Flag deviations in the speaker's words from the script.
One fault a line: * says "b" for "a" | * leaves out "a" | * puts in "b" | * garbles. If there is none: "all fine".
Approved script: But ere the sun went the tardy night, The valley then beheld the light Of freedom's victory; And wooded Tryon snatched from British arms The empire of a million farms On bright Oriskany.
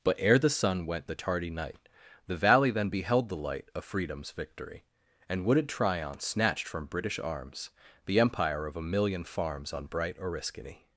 all fine